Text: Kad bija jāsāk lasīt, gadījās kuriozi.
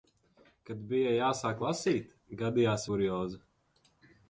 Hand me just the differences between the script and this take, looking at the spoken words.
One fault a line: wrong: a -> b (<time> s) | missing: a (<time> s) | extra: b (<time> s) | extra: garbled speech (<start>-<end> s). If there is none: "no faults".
no faults